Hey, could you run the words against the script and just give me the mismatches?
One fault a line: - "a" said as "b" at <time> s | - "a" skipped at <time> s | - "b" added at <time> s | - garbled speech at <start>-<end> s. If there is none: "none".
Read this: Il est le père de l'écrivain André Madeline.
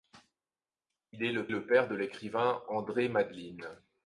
- "le" added at 1.5 s